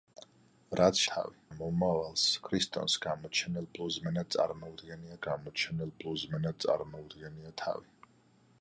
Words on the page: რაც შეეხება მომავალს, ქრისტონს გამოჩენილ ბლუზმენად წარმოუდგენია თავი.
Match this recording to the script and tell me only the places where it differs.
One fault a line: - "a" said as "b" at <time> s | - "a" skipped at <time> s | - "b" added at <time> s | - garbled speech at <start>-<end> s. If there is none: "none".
- "შეეხება" said as "თავი" at 1.1 s
- "გამოჩენილ ბლუზმენად წარმოუდგენია" added at 5.3 s